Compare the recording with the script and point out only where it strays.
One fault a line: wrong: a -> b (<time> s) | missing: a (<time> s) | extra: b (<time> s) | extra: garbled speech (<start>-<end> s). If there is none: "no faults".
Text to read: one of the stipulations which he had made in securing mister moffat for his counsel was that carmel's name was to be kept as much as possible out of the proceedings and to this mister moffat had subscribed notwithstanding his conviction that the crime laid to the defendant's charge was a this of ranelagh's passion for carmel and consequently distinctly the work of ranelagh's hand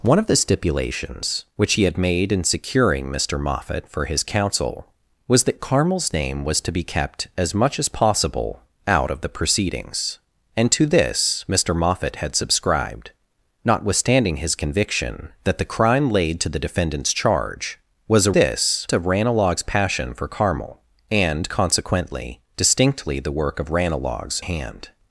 no faults